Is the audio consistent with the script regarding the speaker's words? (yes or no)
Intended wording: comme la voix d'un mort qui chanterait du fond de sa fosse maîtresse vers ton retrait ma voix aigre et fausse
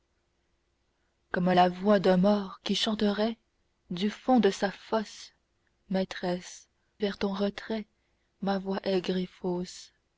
yes